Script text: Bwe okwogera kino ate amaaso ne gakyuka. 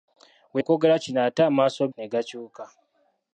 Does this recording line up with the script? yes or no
yes